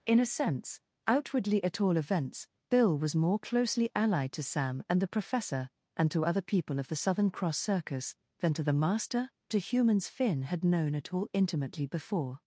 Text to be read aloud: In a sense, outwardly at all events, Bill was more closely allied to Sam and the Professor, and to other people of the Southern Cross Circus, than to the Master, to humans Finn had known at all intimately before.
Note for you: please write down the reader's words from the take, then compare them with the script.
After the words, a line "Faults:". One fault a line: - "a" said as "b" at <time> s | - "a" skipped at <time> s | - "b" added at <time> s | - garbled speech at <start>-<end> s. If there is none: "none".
In a sense, outwardly at all events, Bill was more closely allied to Sam and the Professor, and to other people of the Southern Cross Circus, than to the Master, to humans Finn had known at all intimately before.
Faults:
none